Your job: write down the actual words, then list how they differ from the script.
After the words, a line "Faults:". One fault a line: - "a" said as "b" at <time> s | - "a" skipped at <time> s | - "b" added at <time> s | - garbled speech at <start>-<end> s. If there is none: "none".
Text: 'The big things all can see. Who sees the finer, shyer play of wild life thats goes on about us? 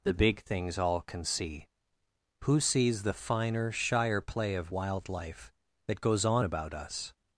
'The big things all can see. Who sees the finer, shyer play of wild life that goes on about us?
Faults:
- "thats" said as "that" at 5.9 s